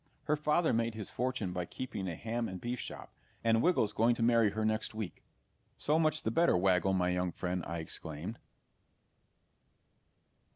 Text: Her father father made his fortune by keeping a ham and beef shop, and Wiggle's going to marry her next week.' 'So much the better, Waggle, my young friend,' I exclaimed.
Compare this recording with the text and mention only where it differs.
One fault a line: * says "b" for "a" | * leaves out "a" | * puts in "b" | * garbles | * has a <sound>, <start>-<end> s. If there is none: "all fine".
* leaves out "father"